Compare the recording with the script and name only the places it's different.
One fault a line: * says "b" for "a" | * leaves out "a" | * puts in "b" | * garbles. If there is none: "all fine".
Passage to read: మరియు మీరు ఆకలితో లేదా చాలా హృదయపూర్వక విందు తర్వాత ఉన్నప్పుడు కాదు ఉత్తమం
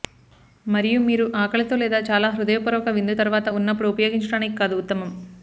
* puts in "ఉపయోగించడానికి"